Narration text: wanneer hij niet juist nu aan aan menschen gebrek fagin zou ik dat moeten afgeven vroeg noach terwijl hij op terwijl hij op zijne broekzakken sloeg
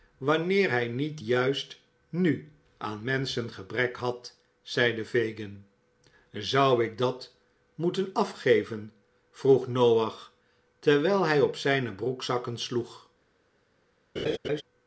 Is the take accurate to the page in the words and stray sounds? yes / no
no